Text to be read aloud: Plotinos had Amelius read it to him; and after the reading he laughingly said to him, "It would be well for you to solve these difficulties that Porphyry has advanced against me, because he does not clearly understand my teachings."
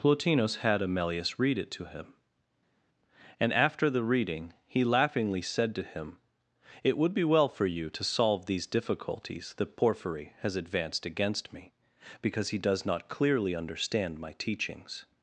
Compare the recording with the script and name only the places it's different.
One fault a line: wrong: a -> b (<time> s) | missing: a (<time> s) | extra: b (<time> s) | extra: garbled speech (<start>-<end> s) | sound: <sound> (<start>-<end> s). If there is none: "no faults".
no faults